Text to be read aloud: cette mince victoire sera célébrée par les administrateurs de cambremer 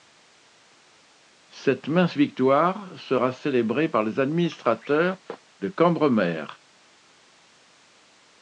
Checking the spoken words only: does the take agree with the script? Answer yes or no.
yes